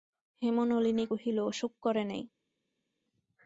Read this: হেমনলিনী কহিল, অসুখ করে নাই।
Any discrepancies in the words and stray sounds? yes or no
no